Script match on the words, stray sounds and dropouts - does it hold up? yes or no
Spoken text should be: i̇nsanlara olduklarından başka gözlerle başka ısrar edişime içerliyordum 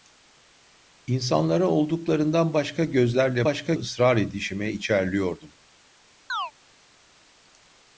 no